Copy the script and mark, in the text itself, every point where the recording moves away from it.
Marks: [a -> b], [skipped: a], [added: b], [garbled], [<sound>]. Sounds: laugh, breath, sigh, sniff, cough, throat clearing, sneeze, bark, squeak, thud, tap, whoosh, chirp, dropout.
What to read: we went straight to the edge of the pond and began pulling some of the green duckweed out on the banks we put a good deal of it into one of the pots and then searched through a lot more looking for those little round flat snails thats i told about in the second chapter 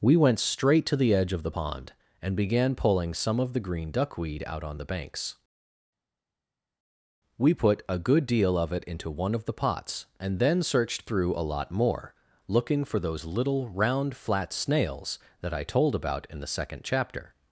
we went straight to the edge of the pond and began pulling some of the green duckweed out on the banks we put a good deal of it into one of the pots and then searched through a lot more looking for those little round flat snails [thats -> that] i told about in the second chapter